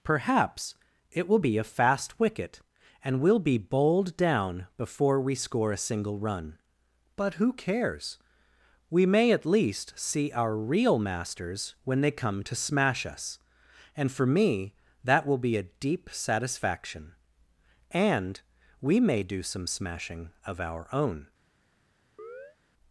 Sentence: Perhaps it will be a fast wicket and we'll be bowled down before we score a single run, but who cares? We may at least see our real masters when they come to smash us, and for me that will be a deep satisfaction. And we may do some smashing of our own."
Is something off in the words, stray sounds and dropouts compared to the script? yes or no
yes